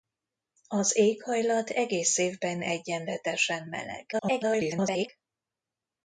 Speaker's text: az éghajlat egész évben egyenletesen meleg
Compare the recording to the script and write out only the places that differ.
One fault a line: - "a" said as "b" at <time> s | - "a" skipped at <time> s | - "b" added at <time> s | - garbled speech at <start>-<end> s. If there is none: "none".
- garbled speech at 4.1-5.1 s